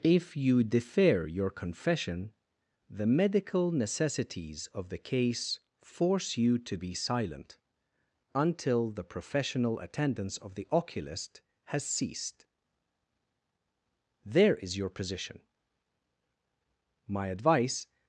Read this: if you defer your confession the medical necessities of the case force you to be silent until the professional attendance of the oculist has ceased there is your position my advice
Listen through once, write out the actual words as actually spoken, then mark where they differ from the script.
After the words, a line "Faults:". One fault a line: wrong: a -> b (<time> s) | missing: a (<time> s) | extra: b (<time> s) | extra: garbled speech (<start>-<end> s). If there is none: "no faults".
if you defer your confession the medical necessities of the case force you to be silent until the professional attendance of the oculist has ceased there is your position my advice
Faults:
no faults